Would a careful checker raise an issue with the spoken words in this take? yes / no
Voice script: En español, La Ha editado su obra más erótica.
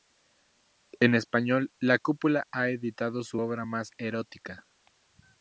yes